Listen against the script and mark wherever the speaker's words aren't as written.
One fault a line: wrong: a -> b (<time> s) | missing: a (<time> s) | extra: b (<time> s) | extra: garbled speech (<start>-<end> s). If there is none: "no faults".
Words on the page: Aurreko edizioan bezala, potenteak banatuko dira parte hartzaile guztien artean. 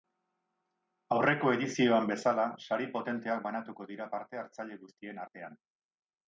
extra: sari (2.7 s)